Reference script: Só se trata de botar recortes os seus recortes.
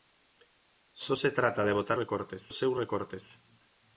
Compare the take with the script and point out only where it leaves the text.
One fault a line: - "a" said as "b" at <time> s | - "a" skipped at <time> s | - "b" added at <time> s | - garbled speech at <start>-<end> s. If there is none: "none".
none